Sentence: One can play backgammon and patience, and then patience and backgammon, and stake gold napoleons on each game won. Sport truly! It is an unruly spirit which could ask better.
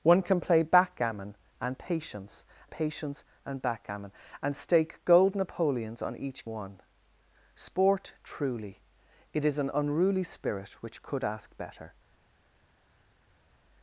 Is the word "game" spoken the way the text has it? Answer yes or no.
no